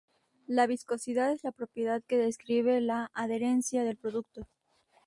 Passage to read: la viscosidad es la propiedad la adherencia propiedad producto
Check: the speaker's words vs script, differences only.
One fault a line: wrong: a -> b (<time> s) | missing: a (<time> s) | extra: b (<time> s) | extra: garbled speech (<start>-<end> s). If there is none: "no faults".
extra: que describe (2.0 s)
wrong: propiedad -> del (3.8 s)